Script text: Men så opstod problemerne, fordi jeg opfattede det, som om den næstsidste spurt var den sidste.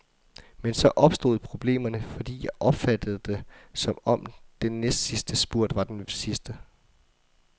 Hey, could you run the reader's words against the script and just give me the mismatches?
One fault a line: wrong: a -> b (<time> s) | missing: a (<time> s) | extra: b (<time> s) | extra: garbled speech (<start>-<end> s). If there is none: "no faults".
no faults